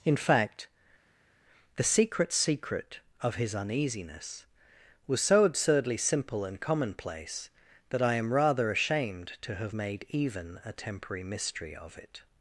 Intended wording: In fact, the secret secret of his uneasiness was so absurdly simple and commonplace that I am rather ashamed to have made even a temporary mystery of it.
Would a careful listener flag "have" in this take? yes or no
no